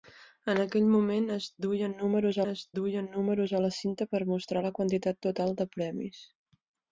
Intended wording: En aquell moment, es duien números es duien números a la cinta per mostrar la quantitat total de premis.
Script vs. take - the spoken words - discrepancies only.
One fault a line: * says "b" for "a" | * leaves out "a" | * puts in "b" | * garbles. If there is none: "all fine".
all fine